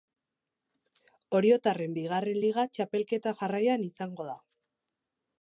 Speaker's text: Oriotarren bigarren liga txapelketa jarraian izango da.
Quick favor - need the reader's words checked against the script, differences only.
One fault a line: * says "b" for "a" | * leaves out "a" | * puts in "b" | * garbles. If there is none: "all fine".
all fine